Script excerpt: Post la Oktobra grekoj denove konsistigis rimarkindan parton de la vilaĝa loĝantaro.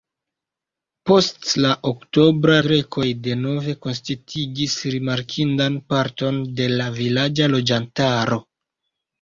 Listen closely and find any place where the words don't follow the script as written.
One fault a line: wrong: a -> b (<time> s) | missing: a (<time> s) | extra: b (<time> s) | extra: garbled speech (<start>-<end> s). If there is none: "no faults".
no faults